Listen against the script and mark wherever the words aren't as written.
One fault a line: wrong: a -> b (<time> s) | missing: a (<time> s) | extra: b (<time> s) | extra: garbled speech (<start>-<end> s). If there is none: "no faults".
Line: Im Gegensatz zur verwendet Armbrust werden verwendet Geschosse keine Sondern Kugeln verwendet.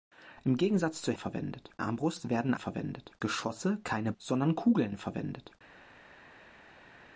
no faults